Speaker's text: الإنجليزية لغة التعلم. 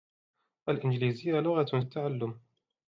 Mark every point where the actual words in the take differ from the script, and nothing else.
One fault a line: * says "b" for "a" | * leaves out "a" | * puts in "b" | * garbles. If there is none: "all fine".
all fine